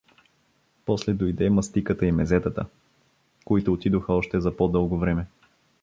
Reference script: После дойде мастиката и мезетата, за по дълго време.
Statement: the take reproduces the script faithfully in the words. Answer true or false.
false